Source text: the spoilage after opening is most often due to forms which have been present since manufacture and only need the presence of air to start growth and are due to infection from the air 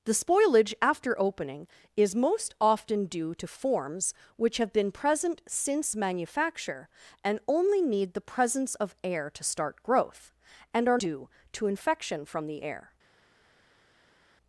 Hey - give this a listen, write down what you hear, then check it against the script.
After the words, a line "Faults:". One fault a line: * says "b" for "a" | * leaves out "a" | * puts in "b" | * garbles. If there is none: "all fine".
the spoilage after opening is most often due to forms which have been present since manufacture and only need the presence of air to start growth and are due to infection from the air
Faults:
all fine